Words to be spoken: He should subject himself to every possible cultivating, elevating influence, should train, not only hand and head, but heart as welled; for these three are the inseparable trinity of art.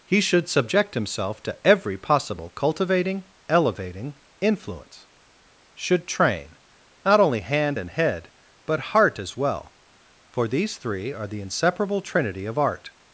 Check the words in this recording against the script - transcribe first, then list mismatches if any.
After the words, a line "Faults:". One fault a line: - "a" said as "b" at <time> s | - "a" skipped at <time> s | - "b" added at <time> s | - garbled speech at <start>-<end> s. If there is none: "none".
He should subject himself to every possible cultivating, elevating influence, should train, not only hand and head, but heart as well; for these three are the inseparable trinity of art.
Faults:
- "welled" said as "well" at 9.4 s